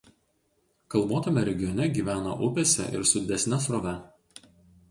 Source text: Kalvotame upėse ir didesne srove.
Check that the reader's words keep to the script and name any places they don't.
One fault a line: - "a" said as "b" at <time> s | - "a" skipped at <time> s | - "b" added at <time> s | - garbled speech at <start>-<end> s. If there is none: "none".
- "regione gyvena" added at 1.5 s
- "su" added at 3.1 s